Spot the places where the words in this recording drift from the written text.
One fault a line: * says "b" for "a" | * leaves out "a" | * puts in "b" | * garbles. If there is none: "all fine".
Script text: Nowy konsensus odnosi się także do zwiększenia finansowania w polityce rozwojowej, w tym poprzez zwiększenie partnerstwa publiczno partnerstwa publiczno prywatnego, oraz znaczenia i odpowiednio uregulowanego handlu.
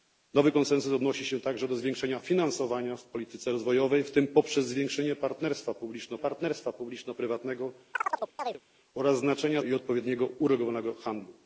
all fine